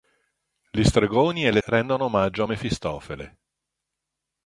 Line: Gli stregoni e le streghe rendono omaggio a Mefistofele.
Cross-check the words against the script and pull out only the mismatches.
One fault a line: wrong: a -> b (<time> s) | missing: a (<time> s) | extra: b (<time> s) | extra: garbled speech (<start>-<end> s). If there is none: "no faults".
missing: streghe (1.6 s)